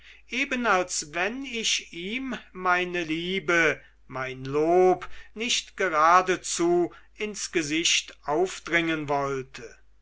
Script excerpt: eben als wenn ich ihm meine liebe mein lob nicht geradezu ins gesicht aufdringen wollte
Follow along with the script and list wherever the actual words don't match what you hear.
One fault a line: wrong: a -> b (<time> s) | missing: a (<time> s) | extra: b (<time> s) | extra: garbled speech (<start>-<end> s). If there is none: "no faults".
no faults